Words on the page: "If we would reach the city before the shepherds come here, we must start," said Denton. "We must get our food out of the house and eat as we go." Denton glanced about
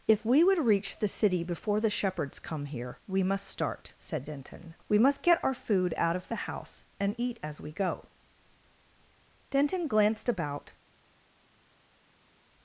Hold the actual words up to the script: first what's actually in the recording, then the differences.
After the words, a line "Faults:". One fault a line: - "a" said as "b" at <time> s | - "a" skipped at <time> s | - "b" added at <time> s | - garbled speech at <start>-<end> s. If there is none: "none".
"If we would reach the city before the shepherds come here, we must start," said Denton. "We must get our food out of the house and eat as we go." Denton glanced about
Faults:
none